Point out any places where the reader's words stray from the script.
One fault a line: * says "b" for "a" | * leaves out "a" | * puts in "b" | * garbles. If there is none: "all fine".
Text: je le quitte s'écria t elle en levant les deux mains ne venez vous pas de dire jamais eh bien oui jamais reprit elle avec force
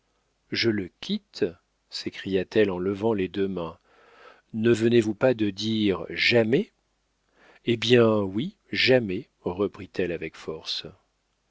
all fine